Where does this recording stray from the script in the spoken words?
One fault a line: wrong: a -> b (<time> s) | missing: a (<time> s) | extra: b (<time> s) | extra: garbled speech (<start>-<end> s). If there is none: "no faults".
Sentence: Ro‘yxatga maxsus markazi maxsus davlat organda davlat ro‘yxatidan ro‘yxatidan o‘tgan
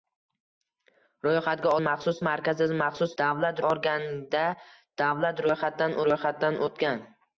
no faults